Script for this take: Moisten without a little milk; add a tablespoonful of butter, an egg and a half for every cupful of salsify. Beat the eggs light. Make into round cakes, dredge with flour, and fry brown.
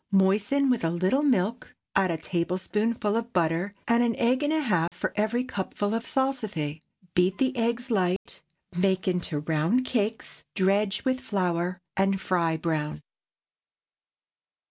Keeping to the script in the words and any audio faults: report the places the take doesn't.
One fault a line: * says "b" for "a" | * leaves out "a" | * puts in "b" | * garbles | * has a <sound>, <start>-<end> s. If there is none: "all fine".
* says "with" for "without"
* puts in "and"
* has a dropout, 4.9-4.9 s
* has a dropout, 8.2-8.3 s